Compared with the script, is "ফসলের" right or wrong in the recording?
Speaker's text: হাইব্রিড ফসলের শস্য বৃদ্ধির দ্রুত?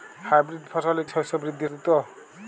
right